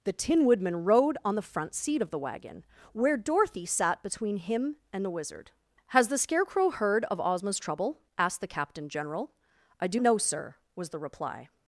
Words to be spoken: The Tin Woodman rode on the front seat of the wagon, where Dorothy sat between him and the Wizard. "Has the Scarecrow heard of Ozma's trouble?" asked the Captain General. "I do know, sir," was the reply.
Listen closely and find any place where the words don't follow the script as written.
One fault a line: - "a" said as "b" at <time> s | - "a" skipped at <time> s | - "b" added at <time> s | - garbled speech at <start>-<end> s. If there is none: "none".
none